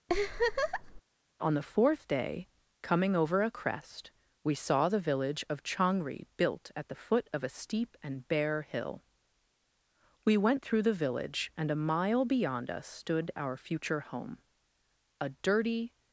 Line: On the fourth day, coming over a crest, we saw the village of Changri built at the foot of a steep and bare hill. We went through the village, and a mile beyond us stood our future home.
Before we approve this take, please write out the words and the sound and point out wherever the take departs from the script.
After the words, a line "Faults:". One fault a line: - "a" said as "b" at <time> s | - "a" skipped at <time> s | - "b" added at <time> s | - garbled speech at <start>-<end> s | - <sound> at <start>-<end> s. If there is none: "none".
On the fourth day, coming over a crest, we saw the village of Changri built at the foot of a steep and bare hill. We went through the village, and a mile beyond us stood our future home. A dirty
Faults:
- laugh at 0.1-1.0 s
- "A dirty" added at 15.2 s